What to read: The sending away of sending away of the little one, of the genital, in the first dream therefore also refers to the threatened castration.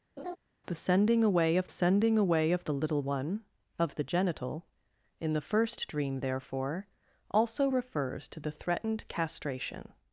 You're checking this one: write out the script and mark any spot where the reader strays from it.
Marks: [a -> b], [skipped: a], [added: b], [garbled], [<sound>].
[laugh] The sending away of sending away of the little one, of the genital, in the first dream therefore also refers to the threatened castration.